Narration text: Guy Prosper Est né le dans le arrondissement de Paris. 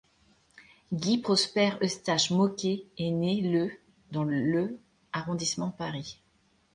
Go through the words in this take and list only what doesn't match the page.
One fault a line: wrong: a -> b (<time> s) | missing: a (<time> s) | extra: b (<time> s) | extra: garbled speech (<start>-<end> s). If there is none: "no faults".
extra: Eustache Môquet (1.8 s)